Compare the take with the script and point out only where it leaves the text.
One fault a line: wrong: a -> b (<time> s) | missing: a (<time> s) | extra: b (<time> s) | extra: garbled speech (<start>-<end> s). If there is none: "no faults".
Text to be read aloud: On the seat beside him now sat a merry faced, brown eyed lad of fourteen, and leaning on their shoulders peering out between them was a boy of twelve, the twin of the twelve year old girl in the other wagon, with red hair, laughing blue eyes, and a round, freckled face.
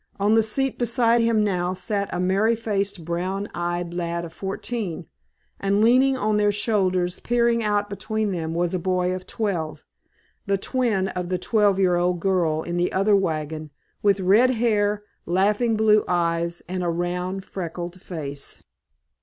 no faults